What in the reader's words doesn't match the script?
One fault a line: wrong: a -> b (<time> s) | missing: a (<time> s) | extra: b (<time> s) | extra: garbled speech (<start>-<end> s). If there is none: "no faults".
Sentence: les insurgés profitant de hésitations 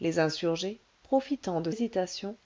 no faults